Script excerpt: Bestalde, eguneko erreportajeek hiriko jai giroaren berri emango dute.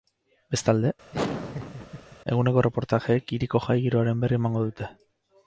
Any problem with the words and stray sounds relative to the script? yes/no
yes